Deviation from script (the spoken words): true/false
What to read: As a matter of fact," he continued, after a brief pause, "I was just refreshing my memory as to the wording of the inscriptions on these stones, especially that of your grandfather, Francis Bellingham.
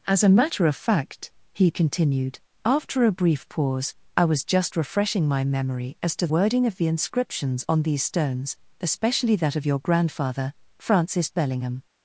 true